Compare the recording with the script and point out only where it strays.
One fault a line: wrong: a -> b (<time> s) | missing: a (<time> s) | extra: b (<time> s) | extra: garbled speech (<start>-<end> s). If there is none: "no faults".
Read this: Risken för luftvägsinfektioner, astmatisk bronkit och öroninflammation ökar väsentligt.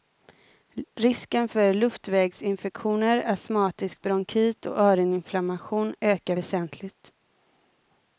no faults